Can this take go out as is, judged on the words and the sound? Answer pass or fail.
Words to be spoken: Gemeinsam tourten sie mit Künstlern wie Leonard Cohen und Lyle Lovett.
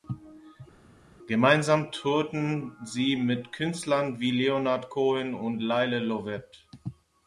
pass